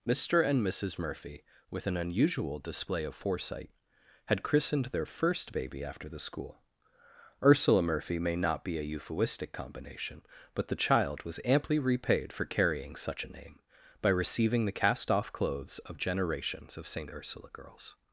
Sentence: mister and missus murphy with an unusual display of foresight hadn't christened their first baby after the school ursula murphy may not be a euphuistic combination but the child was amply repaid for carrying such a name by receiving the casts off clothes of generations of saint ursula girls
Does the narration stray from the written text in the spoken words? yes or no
yes